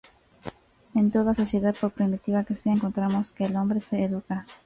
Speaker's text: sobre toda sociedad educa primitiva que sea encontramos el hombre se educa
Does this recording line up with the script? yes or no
no